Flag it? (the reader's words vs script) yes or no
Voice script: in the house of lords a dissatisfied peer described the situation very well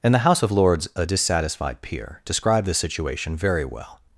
no